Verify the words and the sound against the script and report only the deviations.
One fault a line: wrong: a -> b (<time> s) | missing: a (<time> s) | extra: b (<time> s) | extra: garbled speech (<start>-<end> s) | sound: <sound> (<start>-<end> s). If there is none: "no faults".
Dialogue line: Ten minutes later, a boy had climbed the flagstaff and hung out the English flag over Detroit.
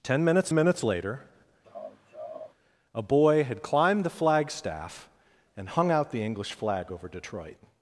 extra: minutes (0.5 s)
sound: laugh (1.6-2.5 s)